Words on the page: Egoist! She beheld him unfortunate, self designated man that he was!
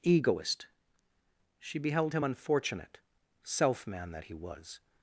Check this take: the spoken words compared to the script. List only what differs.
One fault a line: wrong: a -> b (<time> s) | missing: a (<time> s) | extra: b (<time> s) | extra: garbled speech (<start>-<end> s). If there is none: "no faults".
missing: designated (3.8 s)